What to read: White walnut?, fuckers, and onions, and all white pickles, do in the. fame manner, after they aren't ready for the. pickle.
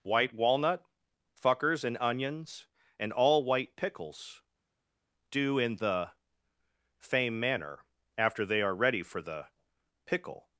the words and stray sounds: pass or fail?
fail